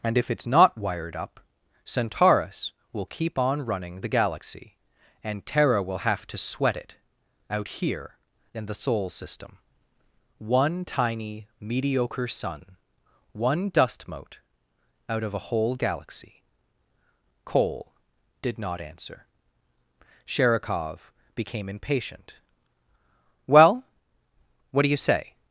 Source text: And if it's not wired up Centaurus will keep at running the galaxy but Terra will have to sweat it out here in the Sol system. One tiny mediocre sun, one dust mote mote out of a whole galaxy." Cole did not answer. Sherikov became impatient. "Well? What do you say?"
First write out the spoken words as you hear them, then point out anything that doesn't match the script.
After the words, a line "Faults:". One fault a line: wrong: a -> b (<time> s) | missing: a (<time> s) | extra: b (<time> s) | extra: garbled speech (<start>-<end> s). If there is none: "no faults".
And if it's not wired up Centaurus will keep on running the galaxy and Terra will have to sweat it out here in the Sol system. One tiny mediocre sun, one dust mote out of a whole galaxy." Cole did not answer. Sherikov became impatient. "Well? What do you say?"
Faults:
wrong: at -> on (3.4 s)
wrong: but -> and (5.2 s)
missing: mote (14.4 s)